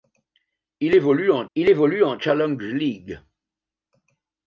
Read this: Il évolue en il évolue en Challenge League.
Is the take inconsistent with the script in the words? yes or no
no